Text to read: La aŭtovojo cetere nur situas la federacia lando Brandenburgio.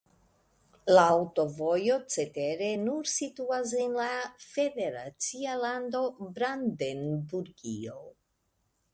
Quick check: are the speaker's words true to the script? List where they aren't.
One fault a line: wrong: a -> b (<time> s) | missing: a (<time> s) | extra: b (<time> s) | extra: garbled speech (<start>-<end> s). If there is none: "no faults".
extra: en (3.8 s)